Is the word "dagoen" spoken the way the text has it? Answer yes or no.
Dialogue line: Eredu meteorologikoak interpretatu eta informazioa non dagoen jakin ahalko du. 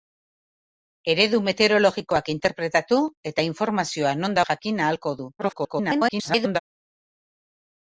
no